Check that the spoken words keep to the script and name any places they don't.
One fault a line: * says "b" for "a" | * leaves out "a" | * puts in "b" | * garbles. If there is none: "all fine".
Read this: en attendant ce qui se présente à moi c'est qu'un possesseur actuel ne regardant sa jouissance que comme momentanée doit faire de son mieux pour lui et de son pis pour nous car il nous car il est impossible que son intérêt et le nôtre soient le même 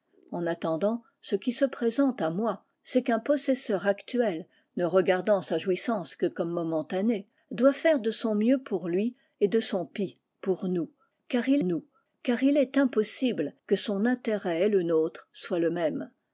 all fine